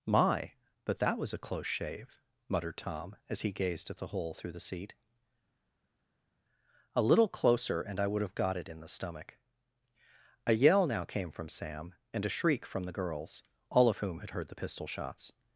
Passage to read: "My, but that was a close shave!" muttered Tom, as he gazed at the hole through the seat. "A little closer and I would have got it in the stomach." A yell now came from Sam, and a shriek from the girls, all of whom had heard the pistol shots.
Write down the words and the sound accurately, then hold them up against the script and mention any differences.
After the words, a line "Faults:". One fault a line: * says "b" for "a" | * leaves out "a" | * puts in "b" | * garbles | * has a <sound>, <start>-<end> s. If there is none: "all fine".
"My, but that was a close shave!" muttered Tom, as he gazed at the hole through the seat. "A little closer and I would have got it in the stomach." A yell now came from Sam, and a shriek from the girls, all of whom had heard the pistol shots.
Faults:
all fine